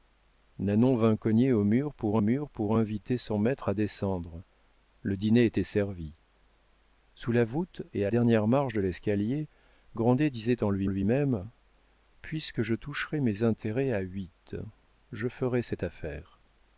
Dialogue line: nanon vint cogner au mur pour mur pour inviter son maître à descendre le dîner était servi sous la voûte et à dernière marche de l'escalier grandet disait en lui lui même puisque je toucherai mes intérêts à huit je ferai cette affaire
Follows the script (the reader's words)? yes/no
yes